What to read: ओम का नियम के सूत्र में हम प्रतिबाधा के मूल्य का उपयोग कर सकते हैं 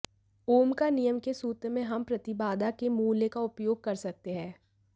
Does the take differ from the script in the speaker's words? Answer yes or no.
no